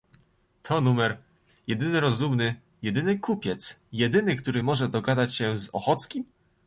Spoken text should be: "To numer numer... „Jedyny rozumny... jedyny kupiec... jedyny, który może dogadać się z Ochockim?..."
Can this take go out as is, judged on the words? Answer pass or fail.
fail